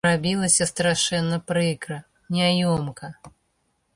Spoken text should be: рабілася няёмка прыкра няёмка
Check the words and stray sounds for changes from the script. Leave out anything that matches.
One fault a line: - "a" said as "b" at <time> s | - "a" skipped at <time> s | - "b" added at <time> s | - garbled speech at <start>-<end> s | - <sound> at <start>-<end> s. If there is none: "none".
- "няёмка" said as "страшэнна" at 0.7 s